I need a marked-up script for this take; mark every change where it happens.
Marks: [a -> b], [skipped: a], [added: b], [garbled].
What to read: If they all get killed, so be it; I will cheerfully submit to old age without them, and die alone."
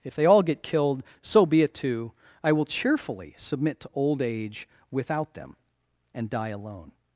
If they all get killed, so be it; [added: too] I will cheerfully submit to old age without them, and die alone."